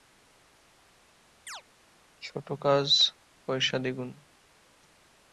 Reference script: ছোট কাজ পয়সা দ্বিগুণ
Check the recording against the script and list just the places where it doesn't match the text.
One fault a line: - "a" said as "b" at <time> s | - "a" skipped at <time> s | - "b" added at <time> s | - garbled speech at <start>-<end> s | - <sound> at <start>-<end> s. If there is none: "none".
- chirp at 1.5-1.6 s